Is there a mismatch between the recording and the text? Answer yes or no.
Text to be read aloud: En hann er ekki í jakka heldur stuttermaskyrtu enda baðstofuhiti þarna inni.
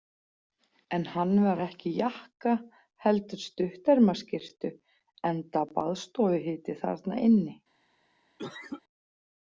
yes